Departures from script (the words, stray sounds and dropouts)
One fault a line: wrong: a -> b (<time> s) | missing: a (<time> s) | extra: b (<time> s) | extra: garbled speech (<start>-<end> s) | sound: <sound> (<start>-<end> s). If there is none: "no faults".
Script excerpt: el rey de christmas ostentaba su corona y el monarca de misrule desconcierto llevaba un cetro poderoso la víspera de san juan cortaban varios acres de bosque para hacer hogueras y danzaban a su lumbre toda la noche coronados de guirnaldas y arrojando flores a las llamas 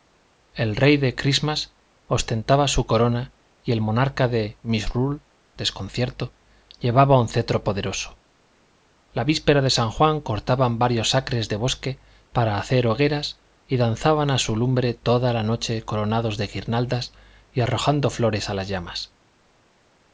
no faults